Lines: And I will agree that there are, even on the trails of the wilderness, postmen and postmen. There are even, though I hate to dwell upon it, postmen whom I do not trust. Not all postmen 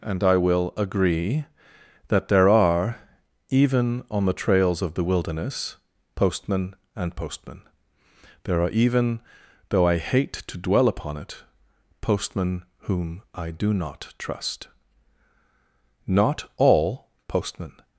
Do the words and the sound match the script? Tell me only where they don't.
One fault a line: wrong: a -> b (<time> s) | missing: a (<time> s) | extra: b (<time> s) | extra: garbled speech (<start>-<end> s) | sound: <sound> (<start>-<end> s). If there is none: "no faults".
no faults